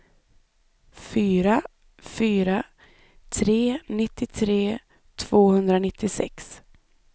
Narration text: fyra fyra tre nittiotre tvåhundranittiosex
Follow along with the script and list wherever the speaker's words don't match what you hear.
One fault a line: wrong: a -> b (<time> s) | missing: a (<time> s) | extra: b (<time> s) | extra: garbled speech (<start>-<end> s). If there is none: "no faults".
no faults